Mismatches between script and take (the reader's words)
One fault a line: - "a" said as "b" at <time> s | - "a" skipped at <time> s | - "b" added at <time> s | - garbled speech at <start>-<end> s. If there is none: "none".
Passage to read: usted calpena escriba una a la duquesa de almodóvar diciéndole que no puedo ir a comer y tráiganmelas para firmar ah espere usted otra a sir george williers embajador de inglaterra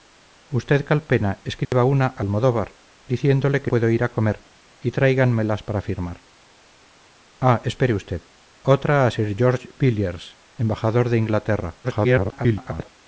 - "la duquesa de" skipped at 2.2 s
- "no" skipped at 3.7 s
- garbled speech at 11.8-12.9 s